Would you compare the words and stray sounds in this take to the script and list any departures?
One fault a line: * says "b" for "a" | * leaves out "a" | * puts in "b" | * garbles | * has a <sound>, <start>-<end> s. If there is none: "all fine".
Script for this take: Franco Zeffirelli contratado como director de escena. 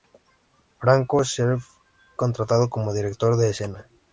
all fine